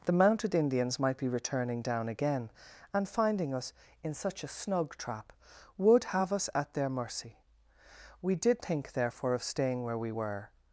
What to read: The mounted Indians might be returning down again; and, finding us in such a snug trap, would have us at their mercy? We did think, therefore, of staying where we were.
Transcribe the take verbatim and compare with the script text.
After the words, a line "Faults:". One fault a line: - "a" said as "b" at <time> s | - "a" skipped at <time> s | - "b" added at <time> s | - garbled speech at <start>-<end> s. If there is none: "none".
The mounted Indians might be returning down again; and, finding us in such a snug trap, would have us at their mercy? We did think, therefore, of staying where we were.
Faults:
none